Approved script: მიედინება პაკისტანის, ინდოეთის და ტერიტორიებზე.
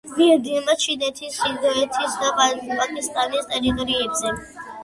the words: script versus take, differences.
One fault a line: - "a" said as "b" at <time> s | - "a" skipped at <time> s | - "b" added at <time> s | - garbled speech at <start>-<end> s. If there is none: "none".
- "პაკისტანის" said as "ჩინეთის" at 0.8 s
- "პაკისტანის" added at 2.4 s